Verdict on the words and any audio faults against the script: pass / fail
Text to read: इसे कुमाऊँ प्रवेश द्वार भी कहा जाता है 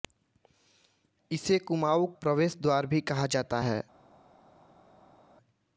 pass